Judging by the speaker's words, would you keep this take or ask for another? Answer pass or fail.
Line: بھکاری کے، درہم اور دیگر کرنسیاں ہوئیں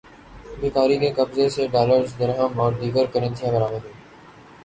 fail